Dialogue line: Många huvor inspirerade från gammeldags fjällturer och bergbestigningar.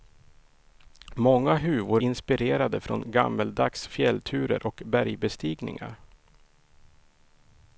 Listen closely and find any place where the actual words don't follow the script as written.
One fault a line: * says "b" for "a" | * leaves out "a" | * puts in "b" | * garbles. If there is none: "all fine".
all fine